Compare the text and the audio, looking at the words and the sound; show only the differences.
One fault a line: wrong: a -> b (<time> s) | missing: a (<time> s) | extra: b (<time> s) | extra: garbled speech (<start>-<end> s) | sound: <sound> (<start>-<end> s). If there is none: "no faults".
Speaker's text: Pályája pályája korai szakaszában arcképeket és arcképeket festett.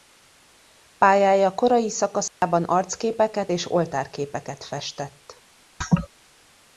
missing: pályája (1.6 s)
sound: dropout (2.3-2.4 s)
wrong: arcképeket -> oltárképeket (3.7 s)
sound: laugh (5.8-6.1 s)